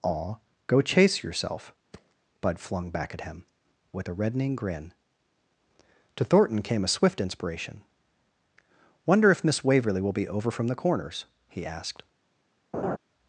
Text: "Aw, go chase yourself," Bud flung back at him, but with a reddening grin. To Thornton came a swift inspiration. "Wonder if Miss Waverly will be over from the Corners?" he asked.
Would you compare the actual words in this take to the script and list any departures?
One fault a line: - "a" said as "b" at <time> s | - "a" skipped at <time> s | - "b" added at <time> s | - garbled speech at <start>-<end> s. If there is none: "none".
- "but" skipped at 3.4 s